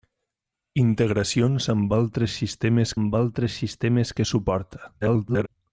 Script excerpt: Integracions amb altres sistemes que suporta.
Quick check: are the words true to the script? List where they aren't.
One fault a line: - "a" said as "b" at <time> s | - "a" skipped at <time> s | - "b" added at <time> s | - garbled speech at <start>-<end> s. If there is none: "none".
- "amb altres sistemes" added at 3.0 s
- garbled speech at 5.0-5.5 s